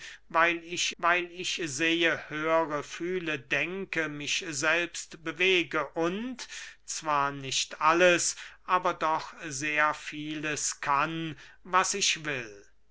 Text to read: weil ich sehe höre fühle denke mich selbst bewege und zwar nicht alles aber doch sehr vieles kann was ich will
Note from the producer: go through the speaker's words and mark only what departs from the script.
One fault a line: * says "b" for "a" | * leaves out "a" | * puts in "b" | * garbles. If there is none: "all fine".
* puts in "weil ich"